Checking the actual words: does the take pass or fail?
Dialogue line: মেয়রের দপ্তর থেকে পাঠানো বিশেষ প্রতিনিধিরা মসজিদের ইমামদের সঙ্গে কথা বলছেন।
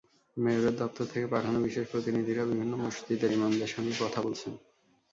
fail